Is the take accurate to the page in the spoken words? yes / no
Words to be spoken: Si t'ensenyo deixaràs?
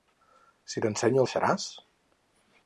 yes